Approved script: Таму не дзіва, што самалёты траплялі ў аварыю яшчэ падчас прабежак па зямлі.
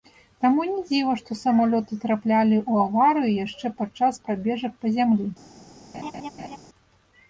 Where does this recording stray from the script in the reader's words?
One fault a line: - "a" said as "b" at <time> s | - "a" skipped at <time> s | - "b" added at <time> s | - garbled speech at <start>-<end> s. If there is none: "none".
none